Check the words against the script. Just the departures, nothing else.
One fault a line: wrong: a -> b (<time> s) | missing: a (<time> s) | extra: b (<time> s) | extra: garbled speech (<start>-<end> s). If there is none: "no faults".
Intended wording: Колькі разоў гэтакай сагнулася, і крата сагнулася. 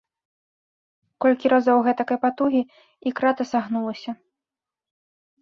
wrong: сагнулася -> патугі (2.2 s)